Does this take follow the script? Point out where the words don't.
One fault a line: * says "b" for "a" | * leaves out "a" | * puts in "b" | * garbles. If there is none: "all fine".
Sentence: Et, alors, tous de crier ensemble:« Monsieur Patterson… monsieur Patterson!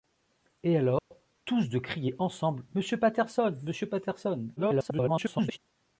* garbles